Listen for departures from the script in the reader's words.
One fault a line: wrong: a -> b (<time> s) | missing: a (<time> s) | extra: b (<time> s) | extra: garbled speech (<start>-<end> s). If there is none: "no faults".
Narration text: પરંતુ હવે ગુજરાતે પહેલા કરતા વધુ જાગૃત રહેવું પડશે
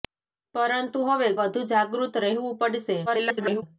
missing: ગુજરાતે પહેલા કરતા (1.3 s)
extra: garbled speech (3.1-3.6 s)